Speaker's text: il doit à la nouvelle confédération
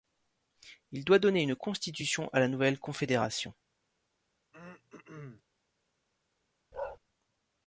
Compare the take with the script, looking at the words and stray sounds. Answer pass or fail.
fail